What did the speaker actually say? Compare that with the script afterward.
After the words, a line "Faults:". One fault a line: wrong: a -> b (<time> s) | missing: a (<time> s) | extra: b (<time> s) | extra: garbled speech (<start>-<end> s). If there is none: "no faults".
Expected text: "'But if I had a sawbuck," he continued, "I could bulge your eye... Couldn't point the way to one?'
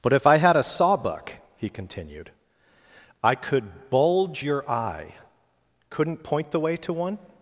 "'But if I had a sawbuck," he continued, "I could bulge your eye... Couldn't point the way to one?'
Faults:
no faults